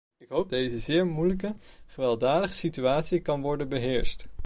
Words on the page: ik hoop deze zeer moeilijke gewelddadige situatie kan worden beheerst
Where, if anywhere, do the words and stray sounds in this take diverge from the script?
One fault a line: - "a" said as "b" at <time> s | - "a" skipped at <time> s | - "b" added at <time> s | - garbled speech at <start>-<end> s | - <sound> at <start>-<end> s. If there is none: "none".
none